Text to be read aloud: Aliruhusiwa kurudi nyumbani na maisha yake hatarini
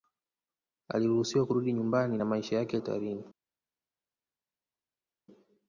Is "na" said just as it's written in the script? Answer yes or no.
yes